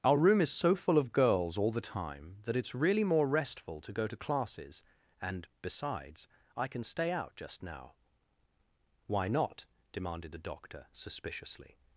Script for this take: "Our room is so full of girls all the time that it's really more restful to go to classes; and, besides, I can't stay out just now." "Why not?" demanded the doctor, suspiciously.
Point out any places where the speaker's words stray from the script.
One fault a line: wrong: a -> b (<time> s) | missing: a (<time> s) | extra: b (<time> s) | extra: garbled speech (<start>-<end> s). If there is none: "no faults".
wrong: can't -> can (6.7 s)